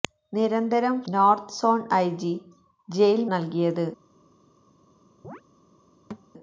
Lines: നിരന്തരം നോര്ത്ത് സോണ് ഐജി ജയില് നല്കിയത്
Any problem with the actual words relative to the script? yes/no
no